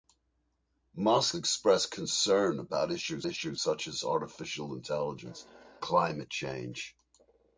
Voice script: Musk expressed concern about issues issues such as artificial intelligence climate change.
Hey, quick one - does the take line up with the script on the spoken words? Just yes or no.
yes